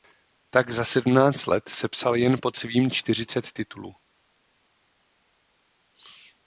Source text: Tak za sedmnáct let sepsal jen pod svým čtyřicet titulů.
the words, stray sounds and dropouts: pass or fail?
pass